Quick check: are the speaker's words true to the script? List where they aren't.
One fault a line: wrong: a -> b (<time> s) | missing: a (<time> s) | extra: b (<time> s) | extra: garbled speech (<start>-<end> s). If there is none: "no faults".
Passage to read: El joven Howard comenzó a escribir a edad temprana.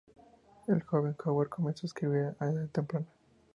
no faults